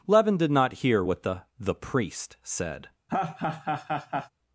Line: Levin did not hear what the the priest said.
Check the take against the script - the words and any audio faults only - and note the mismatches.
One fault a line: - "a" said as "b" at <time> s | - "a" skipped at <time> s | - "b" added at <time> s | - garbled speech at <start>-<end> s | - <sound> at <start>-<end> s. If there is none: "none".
- laugh at 3.1-4.3 s